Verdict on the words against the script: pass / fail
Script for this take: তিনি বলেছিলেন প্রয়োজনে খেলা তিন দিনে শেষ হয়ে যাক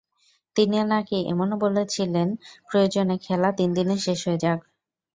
fail